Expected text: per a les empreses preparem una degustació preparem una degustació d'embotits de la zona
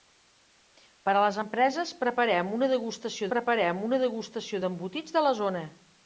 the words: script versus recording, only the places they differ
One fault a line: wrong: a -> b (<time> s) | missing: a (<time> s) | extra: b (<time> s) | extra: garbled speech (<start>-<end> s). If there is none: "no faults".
no faults